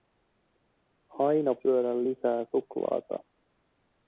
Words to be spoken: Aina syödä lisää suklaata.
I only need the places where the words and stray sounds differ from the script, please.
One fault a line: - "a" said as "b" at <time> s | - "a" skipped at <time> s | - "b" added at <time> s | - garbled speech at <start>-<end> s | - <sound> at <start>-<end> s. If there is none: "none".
none